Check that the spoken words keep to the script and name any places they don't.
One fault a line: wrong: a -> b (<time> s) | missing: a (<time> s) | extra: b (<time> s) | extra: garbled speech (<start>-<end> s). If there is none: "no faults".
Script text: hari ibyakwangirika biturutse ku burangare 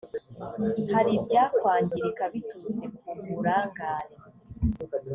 no faults